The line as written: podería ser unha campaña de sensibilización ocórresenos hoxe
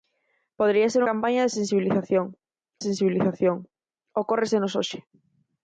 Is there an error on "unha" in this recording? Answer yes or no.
yes